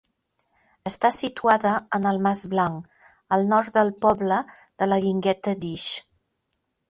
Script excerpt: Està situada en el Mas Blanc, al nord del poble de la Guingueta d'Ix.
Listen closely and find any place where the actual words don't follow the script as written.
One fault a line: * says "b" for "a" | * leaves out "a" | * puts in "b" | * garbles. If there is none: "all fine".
all fine